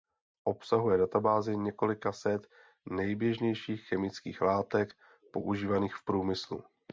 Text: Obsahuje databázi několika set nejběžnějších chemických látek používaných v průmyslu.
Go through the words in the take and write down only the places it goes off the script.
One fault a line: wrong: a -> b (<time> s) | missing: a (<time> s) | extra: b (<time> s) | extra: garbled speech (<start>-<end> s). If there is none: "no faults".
no faults